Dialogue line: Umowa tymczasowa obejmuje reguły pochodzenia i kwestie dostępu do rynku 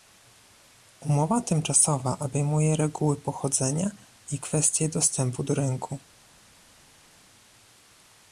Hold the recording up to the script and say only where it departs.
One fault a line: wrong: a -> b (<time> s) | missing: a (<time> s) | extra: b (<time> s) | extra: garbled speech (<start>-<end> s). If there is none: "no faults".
no faults